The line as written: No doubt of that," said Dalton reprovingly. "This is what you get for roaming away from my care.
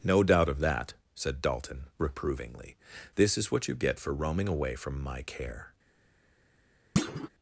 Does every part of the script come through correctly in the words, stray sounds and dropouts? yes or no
no